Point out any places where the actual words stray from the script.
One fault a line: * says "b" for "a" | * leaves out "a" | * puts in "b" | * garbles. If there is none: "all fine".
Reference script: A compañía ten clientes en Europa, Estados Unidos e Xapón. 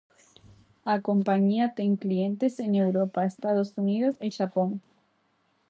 all fine